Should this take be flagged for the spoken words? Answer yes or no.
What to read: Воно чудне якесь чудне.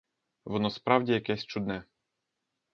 yes